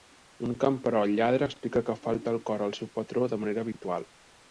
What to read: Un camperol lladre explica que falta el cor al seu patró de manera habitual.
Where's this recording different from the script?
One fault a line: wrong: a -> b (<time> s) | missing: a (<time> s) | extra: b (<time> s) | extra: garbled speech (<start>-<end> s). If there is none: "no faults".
no faults